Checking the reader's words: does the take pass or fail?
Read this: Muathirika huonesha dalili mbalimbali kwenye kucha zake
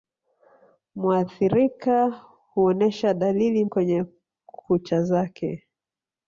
fail